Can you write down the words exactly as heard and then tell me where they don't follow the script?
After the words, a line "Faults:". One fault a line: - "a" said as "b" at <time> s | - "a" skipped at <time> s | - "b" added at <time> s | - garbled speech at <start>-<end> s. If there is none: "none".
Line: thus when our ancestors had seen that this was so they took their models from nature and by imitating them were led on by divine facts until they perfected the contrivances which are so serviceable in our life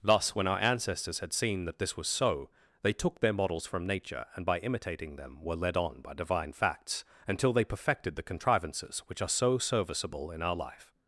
thus when our ancestors had seen that this was so they took their models from nature and by imitating them were led on by divine facts until they perfected the contrivances which are so serviceable in our life
Faults:
none